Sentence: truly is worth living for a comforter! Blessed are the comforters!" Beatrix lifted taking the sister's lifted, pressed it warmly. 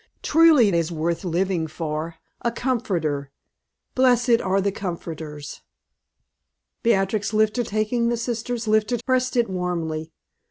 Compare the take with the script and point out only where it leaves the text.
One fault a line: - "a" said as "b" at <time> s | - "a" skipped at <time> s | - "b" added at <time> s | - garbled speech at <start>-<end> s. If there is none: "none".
none